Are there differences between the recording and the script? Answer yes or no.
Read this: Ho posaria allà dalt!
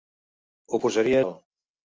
yes